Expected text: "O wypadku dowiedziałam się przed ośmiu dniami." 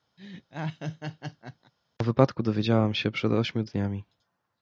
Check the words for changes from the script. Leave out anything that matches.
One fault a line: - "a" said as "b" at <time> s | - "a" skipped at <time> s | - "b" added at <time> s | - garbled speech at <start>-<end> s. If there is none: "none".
none